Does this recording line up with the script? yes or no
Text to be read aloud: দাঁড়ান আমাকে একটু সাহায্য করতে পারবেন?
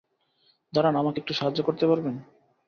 yes